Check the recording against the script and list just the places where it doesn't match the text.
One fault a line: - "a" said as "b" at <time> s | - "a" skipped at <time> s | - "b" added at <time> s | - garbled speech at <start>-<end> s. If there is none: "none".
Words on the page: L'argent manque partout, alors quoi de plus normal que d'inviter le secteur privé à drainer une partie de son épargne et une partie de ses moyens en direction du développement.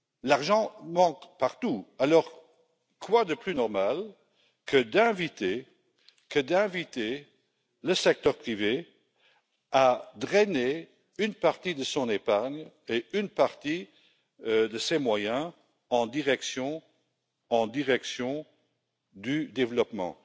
- "en direction" added at 17.5 s